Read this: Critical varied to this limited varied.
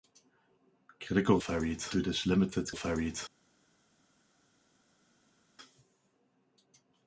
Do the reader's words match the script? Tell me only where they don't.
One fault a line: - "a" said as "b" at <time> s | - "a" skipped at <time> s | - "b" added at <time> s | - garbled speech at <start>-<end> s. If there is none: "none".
none